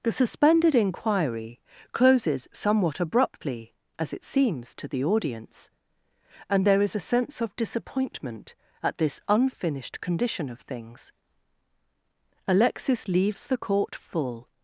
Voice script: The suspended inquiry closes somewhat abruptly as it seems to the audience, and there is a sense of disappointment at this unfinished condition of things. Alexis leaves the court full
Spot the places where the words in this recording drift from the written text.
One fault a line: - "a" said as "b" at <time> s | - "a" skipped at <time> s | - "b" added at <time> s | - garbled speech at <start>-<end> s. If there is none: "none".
none